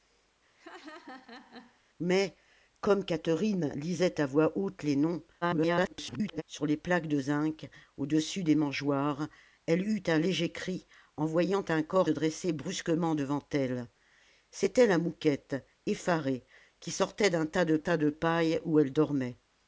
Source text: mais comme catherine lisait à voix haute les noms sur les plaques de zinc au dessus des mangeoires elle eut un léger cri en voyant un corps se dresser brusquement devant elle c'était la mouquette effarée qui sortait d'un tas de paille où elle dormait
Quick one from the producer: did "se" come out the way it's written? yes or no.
no